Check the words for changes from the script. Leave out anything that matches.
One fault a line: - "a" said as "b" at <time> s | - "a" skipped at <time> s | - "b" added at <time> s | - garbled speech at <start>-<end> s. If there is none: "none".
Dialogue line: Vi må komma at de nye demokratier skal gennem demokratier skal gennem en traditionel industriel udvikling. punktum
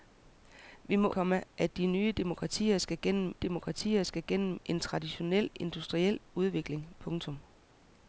none